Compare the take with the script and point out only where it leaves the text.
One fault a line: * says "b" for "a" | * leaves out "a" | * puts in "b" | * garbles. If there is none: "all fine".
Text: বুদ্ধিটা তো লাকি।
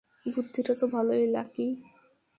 * puts in "ভালোই"